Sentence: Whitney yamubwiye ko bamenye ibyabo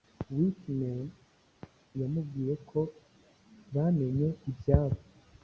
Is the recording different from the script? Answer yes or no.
no